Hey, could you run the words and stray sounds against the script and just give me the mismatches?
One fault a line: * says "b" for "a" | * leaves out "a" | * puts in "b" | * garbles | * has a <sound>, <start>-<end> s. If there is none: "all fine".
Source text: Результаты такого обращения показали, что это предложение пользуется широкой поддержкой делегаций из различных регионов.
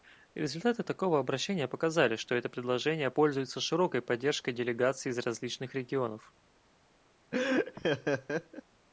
* has a laugh, 7.3-8.6 s